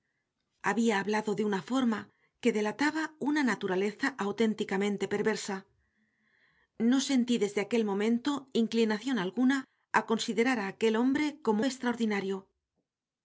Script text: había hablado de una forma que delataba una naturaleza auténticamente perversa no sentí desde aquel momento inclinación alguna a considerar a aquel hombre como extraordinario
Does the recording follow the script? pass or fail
pass